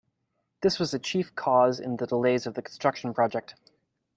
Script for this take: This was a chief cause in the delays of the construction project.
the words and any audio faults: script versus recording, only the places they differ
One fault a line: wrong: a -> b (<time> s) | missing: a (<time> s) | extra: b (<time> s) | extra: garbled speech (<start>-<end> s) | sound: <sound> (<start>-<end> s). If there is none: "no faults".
no faults